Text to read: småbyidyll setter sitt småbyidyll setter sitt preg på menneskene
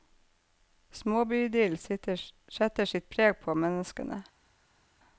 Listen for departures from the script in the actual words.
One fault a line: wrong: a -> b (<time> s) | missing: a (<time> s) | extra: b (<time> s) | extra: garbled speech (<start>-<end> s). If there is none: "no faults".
missing: småbyidyll setter sitt (3.1 s)